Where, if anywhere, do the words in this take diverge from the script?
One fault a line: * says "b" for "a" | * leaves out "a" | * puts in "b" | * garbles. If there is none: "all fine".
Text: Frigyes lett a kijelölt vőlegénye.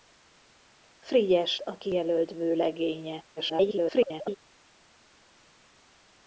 * leaves out "lett"
* garbles